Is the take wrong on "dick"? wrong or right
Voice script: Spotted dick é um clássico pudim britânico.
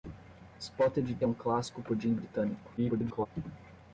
wrong